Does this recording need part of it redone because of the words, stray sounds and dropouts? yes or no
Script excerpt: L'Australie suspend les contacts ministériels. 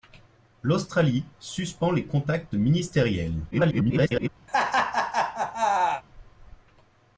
yes